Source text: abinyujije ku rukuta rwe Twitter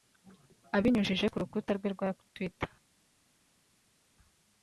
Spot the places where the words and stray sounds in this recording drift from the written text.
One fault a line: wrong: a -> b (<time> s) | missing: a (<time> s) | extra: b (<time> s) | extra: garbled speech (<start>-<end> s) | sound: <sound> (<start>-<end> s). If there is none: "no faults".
extra: rwa (1.9 s)